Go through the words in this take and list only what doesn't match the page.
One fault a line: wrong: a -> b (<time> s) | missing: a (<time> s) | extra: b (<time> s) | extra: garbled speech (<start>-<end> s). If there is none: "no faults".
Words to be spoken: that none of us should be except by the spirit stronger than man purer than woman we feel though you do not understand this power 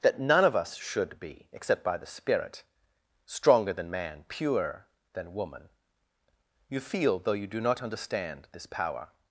wrong: we -> you (6.7 s)